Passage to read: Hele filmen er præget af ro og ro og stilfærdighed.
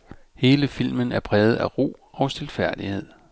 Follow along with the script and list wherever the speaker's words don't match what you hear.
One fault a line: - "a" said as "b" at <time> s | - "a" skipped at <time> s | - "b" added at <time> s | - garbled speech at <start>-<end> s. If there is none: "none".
- "ro og" skipped at 2.3 s